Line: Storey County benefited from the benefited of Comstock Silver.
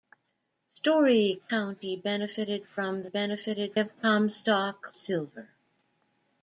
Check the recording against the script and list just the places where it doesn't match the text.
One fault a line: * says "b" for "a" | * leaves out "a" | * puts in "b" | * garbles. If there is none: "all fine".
all fine